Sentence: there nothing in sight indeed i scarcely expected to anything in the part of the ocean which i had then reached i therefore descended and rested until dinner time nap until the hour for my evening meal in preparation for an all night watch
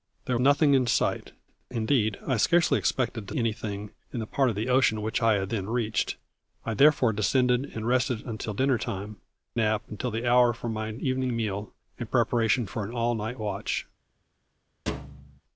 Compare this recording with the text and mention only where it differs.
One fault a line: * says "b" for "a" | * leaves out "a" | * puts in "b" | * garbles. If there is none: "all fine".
all fine